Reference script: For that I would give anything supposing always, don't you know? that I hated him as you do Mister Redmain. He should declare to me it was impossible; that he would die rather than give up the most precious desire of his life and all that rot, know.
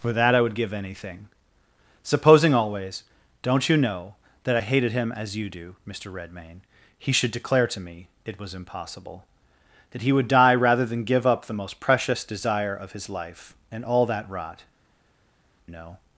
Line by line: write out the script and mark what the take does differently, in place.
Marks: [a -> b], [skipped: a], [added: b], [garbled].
For that I would give anything supposing always, don't you know? that I hated him as you do Mister Redmain. He should declare to me it was impossible; that he would die rather than give up the most precious desire of his life and all that rot, know.